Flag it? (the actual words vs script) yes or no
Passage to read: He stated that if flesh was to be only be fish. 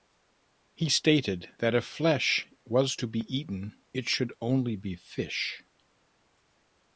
yes